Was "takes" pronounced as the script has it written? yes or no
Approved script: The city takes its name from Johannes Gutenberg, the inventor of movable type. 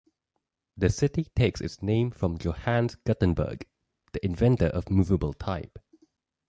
yes